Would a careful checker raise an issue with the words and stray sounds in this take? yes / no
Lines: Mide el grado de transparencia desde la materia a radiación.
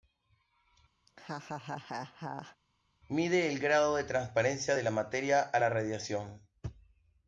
yes